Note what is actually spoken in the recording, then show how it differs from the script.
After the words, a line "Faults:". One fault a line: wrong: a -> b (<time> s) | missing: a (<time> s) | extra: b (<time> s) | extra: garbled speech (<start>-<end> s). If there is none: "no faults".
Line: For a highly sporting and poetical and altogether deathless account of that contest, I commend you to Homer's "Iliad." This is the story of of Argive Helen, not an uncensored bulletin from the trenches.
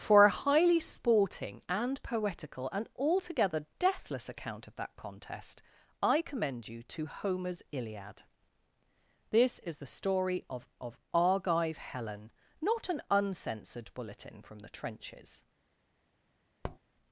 For a highly sporting and poetical and altogether deathless account of that contest, I commend you to Homer's "Iliad." This is the story of of Argive Helen, not an uncensored bulletin from the trenches.
Faults:
no faults